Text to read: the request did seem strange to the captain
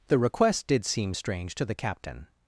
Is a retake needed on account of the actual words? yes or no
no